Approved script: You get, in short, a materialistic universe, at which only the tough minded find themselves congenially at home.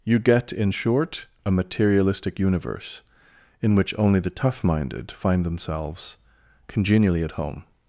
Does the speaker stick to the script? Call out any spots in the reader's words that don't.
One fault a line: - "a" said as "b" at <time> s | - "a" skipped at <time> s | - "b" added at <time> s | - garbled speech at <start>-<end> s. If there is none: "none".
- "at" said as "in" at 3.6 s